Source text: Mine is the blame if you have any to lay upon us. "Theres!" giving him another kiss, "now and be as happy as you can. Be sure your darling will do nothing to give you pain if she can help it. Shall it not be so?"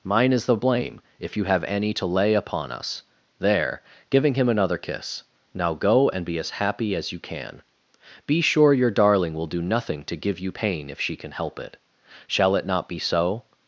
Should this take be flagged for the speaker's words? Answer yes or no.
yes